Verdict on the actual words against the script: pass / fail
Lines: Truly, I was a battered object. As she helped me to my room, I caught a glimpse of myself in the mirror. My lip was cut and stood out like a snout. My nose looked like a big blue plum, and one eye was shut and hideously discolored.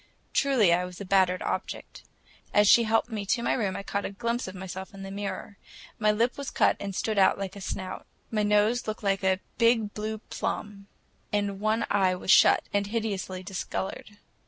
pass